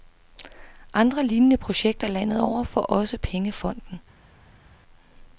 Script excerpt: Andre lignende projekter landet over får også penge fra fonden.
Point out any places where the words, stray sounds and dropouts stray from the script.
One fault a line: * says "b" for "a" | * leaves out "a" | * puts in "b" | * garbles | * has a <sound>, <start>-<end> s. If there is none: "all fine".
* leaves out "fra"